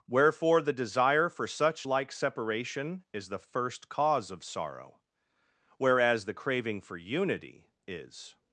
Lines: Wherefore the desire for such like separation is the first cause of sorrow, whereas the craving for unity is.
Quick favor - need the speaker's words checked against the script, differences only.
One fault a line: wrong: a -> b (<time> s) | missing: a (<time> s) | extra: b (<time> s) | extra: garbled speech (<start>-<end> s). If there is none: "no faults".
no faults